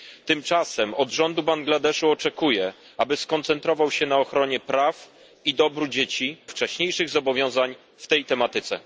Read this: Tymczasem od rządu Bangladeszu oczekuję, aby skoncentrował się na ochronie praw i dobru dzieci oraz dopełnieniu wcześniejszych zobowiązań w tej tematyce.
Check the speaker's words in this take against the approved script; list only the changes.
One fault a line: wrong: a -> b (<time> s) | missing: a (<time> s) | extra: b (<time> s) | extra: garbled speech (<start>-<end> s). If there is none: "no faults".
missing: oraz dopełnieniu (6.4 s)